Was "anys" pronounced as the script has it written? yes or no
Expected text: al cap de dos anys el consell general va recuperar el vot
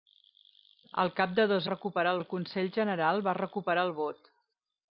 no